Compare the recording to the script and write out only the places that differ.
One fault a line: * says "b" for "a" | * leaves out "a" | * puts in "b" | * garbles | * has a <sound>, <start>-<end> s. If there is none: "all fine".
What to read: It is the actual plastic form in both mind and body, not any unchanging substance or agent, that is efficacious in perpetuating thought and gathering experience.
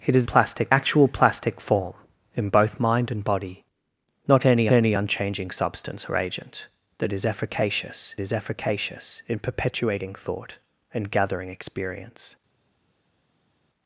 * says "plastic" for "the"
* puts in "any"
* puts in "is efficacious"